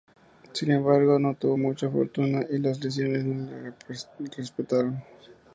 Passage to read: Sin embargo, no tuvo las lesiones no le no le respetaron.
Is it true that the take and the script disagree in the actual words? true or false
true